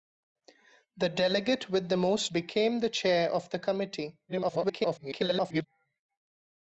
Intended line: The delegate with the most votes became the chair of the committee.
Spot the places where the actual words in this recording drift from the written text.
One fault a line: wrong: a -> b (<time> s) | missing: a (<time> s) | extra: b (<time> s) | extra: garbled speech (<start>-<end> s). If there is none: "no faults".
missing: votes (2.3 s)
extra: garbled speech (4.3-5.7 s)